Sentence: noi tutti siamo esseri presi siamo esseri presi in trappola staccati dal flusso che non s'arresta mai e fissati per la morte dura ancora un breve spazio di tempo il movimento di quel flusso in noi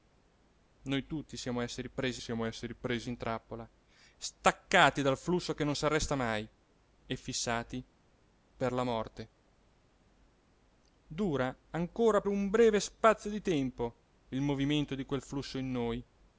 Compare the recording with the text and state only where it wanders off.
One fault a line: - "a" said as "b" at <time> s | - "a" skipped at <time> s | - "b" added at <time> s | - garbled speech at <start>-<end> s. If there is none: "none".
none